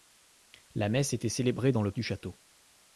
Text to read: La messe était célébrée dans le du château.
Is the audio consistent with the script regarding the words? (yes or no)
yes